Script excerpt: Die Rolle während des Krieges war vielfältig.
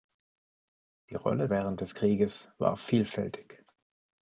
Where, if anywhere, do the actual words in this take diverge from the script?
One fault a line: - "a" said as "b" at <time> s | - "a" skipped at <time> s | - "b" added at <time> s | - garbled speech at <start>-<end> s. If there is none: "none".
none